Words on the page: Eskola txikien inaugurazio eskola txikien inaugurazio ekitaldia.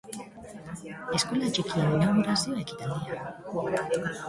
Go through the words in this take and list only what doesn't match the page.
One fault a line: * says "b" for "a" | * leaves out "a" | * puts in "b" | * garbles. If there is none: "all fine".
* leaves out "eskola txikien inaugurazio"